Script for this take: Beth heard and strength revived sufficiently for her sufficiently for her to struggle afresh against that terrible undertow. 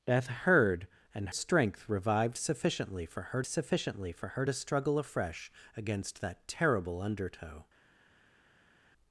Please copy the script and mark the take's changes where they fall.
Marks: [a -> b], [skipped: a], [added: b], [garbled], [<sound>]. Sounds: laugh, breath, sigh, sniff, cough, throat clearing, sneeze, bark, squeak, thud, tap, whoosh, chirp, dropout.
Beth heard and strength revived sufficiently for her sufficiently for her to struggle afresh against that terrible undertow.